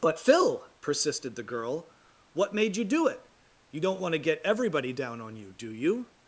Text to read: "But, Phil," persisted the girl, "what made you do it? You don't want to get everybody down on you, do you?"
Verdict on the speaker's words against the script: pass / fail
pass